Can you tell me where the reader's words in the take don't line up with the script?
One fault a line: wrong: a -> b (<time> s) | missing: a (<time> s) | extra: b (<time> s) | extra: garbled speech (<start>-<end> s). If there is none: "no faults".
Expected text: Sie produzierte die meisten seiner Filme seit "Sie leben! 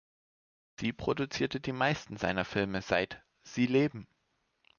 no faults